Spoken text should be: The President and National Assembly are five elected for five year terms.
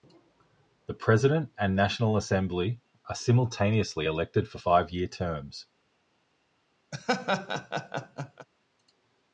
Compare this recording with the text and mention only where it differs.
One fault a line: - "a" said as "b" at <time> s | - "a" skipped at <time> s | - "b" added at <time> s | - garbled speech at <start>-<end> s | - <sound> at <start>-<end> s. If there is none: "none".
- "five" said as "simultaneously" at 3.1 s
- laugh at 6.9-8.5 s